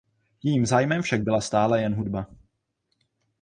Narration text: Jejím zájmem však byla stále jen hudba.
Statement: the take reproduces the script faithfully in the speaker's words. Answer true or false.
true